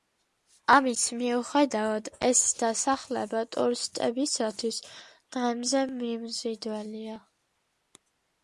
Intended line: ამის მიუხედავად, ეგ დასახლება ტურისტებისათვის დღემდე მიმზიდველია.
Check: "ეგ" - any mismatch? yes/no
yes